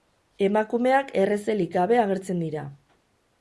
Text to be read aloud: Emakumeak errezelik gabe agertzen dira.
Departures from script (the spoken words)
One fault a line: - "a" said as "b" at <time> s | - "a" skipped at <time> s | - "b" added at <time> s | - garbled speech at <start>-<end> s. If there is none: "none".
none